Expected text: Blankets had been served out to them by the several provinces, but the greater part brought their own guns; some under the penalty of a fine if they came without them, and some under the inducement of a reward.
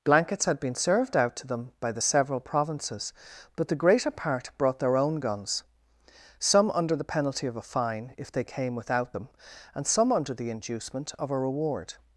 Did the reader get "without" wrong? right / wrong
right